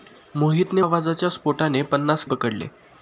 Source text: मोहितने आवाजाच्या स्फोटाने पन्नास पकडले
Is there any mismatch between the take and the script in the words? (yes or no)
no